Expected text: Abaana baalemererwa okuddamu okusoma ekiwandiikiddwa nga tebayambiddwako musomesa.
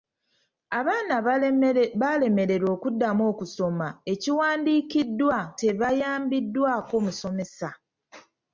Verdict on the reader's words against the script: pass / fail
fail